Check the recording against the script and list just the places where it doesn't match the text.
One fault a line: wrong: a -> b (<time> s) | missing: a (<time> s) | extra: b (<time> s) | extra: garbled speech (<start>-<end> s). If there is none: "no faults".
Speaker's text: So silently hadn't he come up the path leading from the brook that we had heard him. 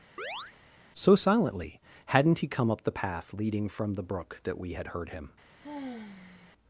no faults